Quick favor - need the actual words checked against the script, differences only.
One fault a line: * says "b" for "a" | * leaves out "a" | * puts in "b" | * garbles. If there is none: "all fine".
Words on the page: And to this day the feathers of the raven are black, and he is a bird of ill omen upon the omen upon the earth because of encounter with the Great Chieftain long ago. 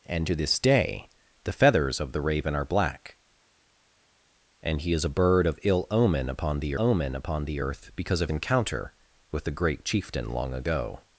all fine